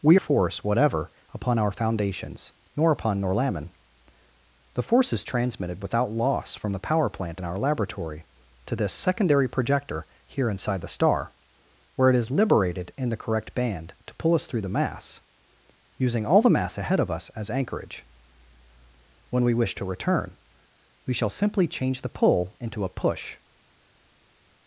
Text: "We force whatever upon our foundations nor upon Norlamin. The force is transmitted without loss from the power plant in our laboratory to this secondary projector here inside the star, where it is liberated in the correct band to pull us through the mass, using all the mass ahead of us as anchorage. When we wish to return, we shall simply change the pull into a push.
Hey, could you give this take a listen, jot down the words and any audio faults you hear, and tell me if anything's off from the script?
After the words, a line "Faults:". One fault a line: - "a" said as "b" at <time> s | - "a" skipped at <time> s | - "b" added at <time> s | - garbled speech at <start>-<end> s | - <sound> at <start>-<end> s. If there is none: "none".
"We force whatever upon our foundations nor upon Norlamin. The force is transmitted without loss from the power plant in our laboratory to this secondary projector here inside the star, where it is liberated in the correct band to pull us through the mass, using all the mass ahead of us as anchorage. When we wish to return, we shall simply change the pull into a push.
Faults:
none